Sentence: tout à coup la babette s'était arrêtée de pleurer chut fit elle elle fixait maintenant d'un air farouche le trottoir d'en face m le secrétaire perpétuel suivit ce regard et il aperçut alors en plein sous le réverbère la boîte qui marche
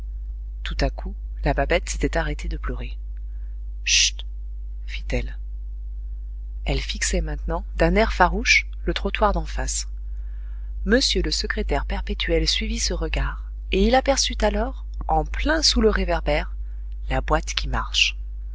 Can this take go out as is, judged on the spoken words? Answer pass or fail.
pass